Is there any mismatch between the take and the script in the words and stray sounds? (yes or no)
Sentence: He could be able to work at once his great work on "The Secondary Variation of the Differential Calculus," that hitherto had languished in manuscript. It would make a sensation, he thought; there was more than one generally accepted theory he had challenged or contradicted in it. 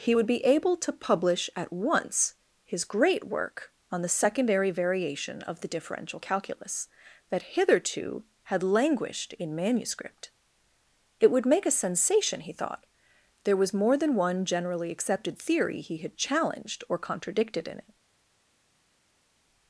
yes